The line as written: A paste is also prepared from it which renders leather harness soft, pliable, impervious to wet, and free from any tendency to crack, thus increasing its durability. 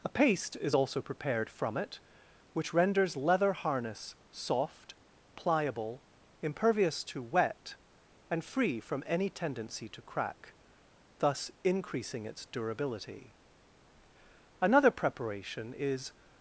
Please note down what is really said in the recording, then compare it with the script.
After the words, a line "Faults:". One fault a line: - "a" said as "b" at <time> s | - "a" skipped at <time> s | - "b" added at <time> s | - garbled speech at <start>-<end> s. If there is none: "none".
A paste is also prepared from it which renders leather harness soft, pliable, impervious to wet, and free from any tendency to crack, thus increasing its durability. Another preparation is
Faults:
- "Another preparation is" added at 14.6 s